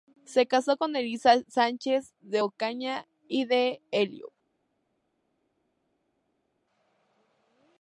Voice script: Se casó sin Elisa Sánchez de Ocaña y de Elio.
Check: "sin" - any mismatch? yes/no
yes